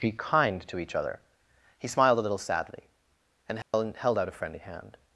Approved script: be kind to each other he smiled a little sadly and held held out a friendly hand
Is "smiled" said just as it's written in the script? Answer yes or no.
yes